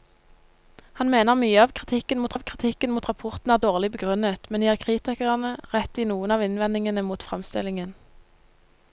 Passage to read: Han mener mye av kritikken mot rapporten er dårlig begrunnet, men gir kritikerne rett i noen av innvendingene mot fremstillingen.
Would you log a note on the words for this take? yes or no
yes